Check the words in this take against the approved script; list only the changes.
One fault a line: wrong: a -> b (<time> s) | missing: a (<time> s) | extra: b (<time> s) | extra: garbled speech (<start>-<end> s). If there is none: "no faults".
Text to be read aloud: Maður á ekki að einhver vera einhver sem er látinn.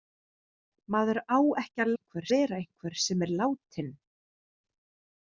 no faults